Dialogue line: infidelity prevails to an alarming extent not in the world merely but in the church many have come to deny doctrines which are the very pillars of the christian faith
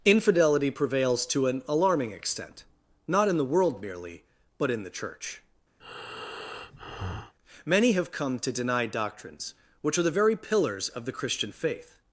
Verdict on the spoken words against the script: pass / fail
pass